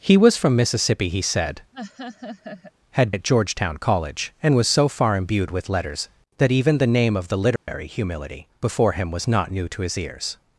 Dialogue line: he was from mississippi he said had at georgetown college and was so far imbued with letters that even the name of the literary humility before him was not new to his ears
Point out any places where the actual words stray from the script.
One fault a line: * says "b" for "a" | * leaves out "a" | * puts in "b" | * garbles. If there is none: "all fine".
all fine